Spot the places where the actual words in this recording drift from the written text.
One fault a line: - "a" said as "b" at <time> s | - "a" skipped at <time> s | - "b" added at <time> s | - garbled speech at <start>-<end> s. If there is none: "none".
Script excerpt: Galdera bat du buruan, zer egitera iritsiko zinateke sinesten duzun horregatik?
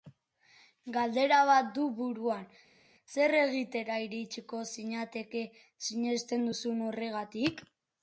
none